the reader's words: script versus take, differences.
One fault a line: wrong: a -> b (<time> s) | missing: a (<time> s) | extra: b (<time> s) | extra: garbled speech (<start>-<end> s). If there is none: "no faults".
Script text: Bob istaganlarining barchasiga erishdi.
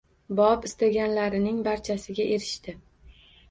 no faults